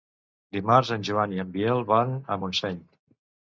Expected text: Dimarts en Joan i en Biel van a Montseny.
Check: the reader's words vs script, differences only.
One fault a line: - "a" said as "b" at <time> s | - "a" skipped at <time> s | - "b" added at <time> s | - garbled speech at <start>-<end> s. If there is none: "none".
none